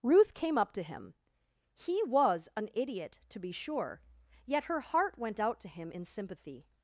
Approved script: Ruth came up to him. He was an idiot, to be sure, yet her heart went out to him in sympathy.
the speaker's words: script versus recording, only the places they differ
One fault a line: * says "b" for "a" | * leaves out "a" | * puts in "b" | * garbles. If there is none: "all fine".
all fine